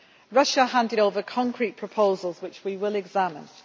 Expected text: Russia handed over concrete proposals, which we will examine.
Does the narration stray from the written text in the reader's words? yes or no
no